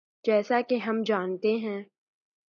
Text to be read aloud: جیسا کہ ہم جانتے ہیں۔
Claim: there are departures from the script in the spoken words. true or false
false